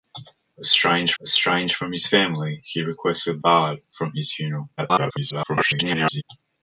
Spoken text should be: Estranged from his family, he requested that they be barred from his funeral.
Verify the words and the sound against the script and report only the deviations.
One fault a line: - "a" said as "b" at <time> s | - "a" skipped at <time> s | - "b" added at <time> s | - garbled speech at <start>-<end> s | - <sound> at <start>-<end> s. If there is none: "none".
- "estranged" added at 1.2 s
- "that they be" skipped at 3.4 s
- garbled speech at 4.8-6.2 s